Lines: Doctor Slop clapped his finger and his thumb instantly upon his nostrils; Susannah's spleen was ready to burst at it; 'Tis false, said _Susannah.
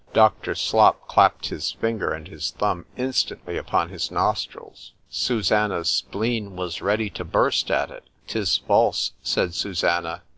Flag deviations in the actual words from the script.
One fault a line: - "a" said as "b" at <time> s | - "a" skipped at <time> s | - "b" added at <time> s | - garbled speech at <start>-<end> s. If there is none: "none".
none